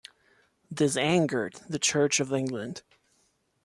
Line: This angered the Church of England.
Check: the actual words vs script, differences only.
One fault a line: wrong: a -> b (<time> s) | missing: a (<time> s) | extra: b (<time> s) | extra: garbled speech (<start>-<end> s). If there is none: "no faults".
no faults